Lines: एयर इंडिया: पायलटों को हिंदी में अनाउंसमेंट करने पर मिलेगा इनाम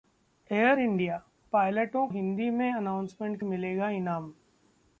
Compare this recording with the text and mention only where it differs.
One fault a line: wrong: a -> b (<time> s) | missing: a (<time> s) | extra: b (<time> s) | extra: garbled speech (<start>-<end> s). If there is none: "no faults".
missing: को (2.1 s)
missing: करने पर (3.4 s)